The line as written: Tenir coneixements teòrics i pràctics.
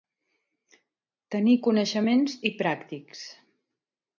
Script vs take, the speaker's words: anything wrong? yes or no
yes